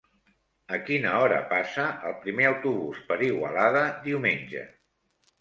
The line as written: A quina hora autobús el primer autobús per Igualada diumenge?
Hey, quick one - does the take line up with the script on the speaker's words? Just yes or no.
no